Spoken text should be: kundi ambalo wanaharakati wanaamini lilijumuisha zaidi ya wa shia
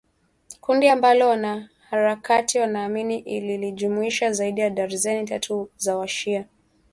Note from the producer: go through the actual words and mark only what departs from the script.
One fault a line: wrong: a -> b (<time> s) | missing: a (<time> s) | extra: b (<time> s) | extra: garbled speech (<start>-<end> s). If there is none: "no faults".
extra: darzeni tatu za (4.7 s)